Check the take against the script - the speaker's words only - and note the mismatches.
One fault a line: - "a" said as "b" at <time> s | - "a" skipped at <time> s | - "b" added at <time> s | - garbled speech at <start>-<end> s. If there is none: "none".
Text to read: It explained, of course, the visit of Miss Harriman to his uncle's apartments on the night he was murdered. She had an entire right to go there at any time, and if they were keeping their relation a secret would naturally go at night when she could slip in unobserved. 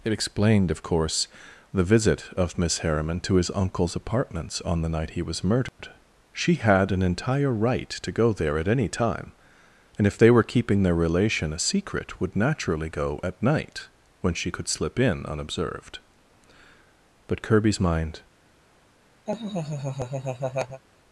- "But Kirby's mind" added at 17.3 s